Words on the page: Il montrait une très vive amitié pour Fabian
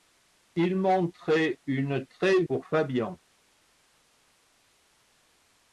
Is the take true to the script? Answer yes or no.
no